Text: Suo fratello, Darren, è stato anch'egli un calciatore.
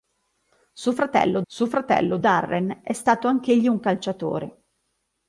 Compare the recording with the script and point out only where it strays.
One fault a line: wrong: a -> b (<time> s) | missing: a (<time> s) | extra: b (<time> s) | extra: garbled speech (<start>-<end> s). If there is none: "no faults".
extra: suo fratello (1.5 s)